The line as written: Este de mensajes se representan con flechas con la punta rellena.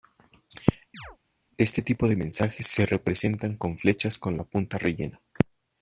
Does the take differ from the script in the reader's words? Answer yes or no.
yes